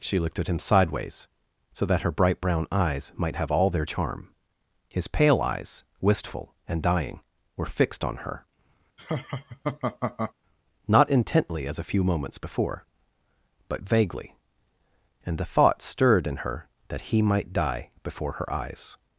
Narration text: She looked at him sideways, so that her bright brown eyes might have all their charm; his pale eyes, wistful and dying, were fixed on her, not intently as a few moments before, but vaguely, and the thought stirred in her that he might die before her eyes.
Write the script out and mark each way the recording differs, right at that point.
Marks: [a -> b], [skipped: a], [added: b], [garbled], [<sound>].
She looked at him sideways, so that her bright brown eyes might have all their charm; his pale eyes, wistful and dying, were fixed on her, [laugh] not intently as a few moments before, but vaguely, and the thought stirred in her that he might die before her eyes.